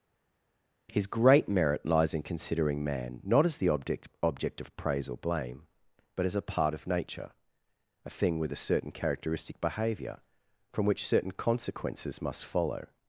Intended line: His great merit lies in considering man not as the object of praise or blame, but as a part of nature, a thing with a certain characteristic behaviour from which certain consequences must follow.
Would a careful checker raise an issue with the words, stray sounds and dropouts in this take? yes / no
yes